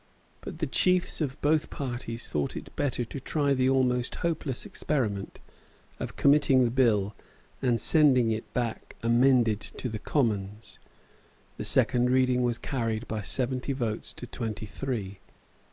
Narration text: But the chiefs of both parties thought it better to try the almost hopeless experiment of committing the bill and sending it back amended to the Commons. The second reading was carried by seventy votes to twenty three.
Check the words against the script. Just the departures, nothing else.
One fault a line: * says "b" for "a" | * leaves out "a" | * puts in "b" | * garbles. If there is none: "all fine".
all fine